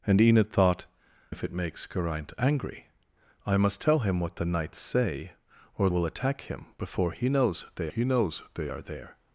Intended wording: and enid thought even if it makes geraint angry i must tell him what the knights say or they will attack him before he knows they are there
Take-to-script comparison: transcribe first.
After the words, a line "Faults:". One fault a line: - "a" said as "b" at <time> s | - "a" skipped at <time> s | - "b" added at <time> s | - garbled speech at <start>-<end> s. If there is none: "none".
and enid thought if it makes geraint angry i must tell him what the knights say or will attack him before he knows they he knows they are there
Faults:
- "even" skipped at 0.8 s
- "they" skipped at 5.9 s
- "he knows they" added at 7.9 s